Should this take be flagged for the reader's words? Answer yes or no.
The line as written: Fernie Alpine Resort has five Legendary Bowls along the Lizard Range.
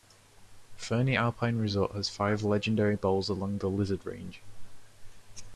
no